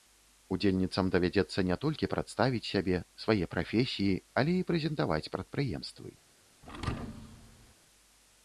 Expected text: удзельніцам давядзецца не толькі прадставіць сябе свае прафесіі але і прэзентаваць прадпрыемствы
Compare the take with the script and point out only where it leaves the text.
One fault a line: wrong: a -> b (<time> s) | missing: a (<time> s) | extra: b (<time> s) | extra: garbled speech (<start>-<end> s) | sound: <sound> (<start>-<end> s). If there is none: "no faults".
sound: thud (6.6-7.7 s)